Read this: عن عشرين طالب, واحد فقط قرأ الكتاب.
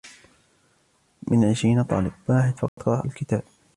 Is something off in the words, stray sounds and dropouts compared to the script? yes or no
yes